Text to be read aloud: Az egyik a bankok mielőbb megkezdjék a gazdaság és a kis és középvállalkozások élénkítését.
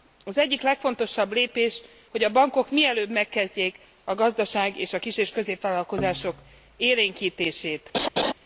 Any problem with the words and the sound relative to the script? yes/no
yes